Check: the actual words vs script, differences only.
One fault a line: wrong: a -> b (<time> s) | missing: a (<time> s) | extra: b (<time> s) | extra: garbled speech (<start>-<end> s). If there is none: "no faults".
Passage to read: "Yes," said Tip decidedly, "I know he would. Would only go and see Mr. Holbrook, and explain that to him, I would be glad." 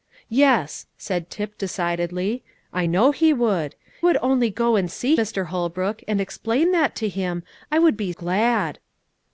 no faults